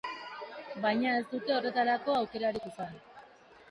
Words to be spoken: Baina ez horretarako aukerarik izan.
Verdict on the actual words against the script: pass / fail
fail